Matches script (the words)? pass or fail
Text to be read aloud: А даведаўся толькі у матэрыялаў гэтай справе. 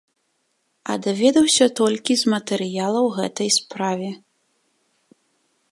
fail